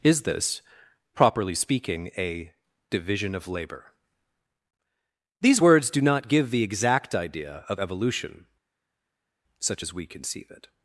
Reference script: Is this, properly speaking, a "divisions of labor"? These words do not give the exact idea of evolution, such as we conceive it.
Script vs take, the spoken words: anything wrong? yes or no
yes